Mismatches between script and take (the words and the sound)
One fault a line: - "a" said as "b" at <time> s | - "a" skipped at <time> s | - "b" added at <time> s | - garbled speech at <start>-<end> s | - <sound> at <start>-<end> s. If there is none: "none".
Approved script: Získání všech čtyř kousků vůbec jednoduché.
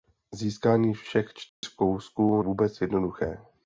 - dropout at 1.5-1.6 s